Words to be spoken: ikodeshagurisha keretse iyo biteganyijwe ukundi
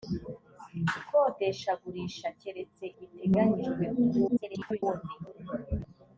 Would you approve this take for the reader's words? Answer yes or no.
no